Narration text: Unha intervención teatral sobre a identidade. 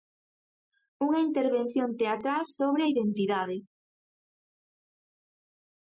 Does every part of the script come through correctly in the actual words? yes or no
yes